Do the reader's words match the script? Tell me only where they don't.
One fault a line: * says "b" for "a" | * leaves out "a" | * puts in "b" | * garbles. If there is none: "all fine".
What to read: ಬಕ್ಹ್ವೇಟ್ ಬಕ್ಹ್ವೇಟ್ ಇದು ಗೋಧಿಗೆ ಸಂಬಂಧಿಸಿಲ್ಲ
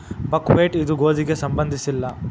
* leaves out "ಬಕ್ಹ್ವೇಟ್"